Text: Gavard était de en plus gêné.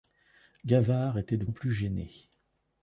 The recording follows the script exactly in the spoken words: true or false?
true